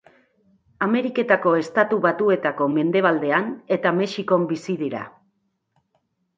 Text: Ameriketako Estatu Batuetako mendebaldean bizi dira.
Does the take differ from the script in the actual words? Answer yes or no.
yes